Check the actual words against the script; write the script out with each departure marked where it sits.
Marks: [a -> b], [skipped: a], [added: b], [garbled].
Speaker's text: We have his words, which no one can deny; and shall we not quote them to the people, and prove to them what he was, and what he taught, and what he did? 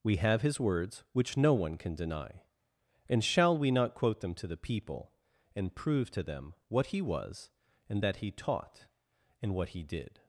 We have his words, which no one can deny; and shall we not quote them to the people, and prove to them what he was, and [what -> that] he taught, and what he did?